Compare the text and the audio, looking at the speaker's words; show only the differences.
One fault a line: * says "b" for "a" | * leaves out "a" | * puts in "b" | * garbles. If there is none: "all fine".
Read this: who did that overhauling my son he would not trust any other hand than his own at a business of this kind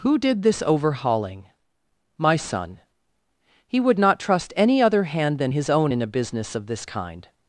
* says "this" for "that"
* says "in" for "at"